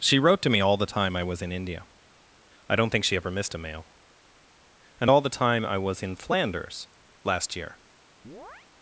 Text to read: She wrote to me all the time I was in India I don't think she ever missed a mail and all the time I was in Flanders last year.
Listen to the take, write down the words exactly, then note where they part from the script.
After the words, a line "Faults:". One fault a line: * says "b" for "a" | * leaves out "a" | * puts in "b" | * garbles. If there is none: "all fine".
She wrote to me all the time I was in India I don't think she ever missed a mail and all the time I was in Flanders last year.
Faults:
all fine